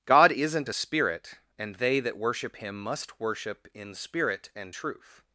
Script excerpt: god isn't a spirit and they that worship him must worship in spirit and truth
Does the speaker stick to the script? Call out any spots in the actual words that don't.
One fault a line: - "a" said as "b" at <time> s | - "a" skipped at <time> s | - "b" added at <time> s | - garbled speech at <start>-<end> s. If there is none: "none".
none